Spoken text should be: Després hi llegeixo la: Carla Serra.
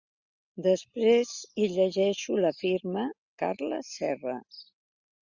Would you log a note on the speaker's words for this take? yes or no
yes